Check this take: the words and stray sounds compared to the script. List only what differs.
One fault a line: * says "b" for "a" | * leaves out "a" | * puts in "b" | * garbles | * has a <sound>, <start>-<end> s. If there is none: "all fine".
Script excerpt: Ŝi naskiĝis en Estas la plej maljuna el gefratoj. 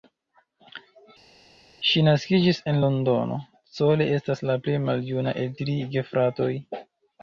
* puts in "Londono Cole"
* puts in "tri"